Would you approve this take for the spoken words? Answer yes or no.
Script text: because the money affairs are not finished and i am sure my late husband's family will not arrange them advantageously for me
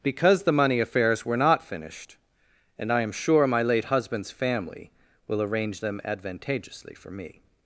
no